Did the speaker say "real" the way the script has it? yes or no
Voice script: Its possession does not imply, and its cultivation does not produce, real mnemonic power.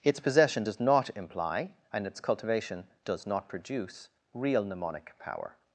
yes